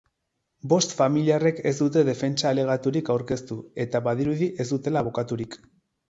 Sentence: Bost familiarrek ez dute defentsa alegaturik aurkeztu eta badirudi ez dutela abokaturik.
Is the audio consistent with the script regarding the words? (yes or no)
yes